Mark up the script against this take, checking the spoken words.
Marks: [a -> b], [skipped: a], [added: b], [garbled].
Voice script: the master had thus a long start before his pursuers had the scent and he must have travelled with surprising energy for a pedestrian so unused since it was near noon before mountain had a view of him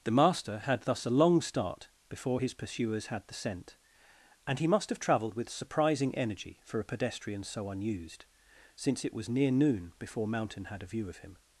the master had thus a long start before his pursuers had the scent and he must have travelled with surprising energy for a pedestrian so unused since it was near noon before mountain had a view of him